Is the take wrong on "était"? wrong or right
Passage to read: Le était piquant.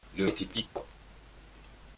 right